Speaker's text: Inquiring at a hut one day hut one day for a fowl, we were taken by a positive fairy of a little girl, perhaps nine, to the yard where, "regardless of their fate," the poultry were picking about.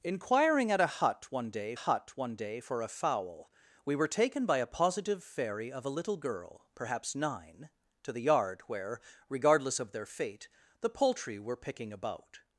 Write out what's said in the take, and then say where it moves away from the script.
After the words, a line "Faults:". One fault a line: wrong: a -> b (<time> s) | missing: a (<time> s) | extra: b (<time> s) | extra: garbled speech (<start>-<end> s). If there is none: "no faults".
Inquiring at a hut one day hut one day for a fowl, we were taken by a positive fairy of a little girl, perhaps nine, to the yard where, "regardless of their fate," the poultry were picking about.
Faults:
no faults